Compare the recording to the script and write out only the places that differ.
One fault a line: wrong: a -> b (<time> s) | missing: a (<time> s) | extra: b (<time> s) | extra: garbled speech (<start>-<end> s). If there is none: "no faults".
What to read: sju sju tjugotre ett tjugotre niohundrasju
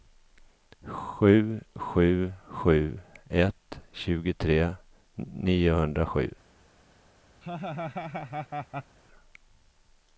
wrong: tjugotre -> sju (2.5 s)